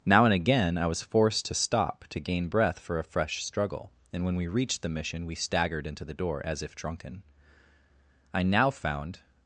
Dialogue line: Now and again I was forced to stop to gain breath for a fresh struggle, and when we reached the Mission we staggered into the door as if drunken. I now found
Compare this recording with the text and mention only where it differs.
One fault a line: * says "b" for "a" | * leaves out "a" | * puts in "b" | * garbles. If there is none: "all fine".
all fine